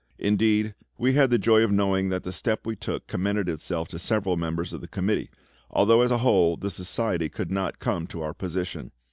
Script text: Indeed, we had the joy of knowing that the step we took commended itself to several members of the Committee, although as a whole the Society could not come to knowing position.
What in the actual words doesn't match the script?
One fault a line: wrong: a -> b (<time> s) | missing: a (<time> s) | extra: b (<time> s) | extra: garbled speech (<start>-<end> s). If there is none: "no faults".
wrong: knowing -> our (8.2 s)